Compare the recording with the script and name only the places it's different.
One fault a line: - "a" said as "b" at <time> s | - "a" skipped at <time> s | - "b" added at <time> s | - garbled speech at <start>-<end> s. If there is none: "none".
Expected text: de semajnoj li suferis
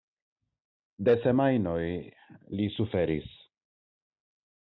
none